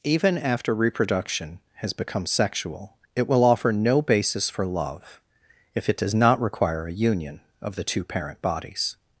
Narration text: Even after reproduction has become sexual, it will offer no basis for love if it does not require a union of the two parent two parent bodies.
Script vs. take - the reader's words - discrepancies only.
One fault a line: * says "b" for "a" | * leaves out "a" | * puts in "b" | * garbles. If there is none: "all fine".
* leaves out "two parent"